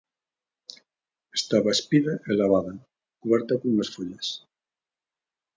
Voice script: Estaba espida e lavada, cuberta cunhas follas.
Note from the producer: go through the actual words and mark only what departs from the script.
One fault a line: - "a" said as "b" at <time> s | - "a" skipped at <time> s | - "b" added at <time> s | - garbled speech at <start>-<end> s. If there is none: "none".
none